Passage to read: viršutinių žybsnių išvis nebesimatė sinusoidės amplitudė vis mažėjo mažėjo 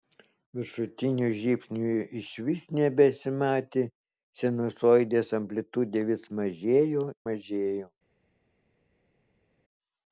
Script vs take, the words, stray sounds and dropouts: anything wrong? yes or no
no